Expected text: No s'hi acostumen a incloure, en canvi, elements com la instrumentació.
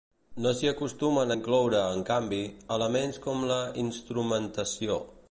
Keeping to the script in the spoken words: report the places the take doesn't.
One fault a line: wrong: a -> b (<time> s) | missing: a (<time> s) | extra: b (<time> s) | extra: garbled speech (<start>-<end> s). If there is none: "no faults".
no faults